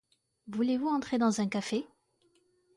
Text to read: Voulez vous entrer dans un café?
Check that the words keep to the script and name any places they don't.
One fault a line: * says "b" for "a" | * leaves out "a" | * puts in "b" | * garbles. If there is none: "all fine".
all fine